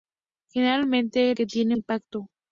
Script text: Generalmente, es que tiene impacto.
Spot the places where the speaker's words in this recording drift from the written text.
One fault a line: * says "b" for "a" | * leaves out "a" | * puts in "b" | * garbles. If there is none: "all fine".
all fine